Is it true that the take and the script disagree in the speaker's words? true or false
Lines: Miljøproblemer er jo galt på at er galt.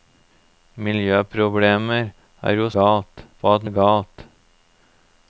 false